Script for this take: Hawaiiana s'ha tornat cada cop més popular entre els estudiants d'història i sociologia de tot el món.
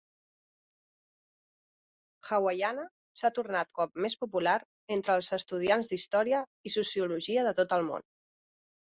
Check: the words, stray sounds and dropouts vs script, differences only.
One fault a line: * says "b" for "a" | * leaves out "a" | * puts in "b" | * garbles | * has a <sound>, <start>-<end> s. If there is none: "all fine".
* leaves out "cada"